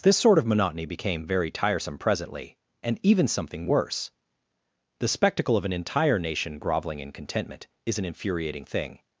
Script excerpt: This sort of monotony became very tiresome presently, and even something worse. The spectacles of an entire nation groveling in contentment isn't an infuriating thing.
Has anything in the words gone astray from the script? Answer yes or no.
yes